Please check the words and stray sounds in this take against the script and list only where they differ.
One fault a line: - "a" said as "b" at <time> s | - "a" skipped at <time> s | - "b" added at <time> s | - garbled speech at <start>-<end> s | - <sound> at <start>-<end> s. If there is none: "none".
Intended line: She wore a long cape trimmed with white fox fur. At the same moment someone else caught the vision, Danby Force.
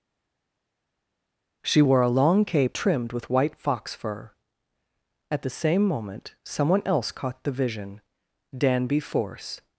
none